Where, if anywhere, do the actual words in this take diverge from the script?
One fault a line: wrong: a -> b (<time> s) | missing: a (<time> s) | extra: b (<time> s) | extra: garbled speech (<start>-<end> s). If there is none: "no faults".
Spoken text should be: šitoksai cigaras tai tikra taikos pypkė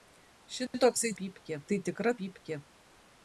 wrong: cigaras -> pypkė (1.2 s)
missing: taikos (2.2 s)